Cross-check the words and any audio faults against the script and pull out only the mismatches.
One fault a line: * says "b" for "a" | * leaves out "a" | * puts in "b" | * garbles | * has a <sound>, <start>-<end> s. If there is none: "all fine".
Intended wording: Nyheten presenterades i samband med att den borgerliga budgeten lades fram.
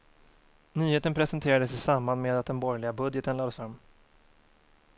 all fine